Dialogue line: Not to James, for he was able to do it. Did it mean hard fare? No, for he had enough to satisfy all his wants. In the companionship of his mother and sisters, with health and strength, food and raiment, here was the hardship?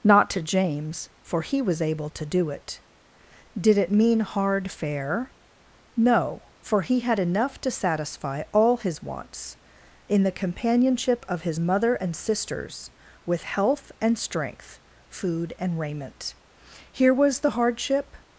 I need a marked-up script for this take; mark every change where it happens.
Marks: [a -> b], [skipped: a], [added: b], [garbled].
Not to James, for he was able to do it. Did it mean hard fare? No, for he had enough to satisfy all his wants. In the companionship of his mother and sisters, with health and strength, food and raiment, here was the hardship?